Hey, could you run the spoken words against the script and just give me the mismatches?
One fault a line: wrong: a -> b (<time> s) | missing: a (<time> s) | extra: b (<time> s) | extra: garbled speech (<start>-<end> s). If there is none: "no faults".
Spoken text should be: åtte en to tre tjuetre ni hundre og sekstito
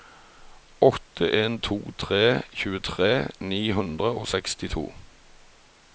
no faults